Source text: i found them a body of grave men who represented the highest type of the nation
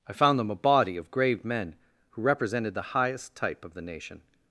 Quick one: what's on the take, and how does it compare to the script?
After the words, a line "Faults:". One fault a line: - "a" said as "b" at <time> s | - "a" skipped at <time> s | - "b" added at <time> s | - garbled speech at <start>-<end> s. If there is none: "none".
i found them a body of grave men who represented the highest type of the nation
Faults:
none